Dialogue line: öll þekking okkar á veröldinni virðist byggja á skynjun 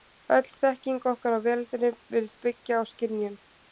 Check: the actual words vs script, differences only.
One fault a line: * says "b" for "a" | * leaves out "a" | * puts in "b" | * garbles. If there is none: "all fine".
all fine